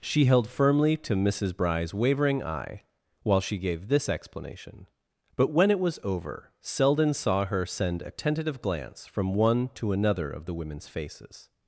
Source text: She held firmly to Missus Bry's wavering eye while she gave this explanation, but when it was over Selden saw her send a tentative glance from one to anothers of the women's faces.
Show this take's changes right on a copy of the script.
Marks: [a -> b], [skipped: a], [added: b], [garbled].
She held firmly to Missus Bry's wavering eye while she gave this explanation, but when it was over Selden saw her send a tentative glance from one to [anothers -> another] of the women's faces.